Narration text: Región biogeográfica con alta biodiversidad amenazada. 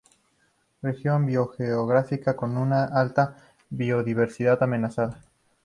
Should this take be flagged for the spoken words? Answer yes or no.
yes